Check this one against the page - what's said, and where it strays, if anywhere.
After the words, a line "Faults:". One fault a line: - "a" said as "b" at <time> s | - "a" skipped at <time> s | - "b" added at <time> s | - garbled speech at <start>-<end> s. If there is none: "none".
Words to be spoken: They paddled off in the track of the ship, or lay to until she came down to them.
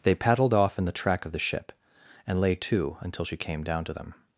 They paddled off in the track of the ship, and lay to until she came down to them.
Faults:
- "or" said as "and" at 2.2 s